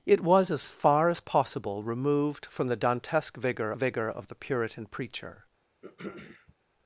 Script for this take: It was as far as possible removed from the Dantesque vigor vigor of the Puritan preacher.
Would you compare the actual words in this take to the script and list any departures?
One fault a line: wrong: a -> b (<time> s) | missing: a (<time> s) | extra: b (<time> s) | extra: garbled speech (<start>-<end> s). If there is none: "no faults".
no faults